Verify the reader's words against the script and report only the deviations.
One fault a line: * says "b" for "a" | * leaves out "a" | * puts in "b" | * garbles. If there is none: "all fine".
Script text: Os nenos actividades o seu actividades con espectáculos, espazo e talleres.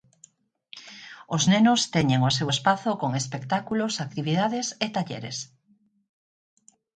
* says "teñen" for "actividades"
* says "espazo" for "actividades"
* says "actividades" for "espazo"